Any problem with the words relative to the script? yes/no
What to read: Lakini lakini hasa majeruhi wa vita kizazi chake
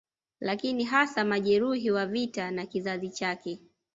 yes